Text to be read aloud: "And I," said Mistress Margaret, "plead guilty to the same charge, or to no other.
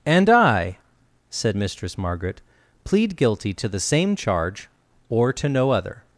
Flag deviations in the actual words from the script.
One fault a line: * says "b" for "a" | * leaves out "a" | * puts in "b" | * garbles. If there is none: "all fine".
all fine